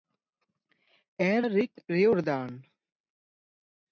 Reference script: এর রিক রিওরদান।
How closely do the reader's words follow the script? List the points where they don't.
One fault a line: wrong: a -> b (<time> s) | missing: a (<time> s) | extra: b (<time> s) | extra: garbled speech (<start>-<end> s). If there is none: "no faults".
no faults